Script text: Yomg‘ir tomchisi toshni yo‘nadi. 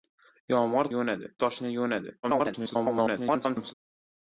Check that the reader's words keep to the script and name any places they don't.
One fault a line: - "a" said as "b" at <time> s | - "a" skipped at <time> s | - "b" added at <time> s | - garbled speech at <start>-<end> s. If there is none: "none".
- "tomchisi" said as "yo‘nadi" at 0.9 s
- garbled speech at 2.2-3.7 s